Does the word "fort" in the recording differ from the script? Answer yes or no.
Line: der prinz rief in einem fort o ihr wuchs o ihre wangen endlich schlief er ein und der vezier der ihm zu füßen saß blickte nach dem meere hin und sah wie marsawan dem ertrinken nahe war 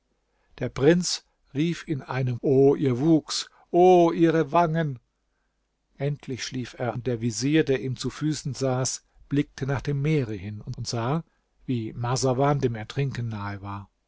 yes